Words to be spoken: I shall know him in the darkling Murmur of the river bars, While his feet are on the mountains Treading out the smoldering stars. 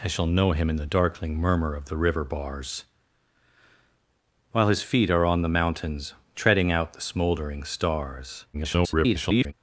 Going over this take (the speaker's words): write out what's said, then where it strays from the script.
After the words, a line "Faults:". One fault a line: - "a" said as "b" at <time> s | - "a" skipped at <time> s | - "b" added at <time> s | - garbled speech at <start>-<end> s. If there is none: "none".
I shall know him in the darkling Murmur of the river bars, While his feet are on the mountains Treading out the smoldering stars. [garbled]
Faults:
- garbled speech at 8.5-9.5 s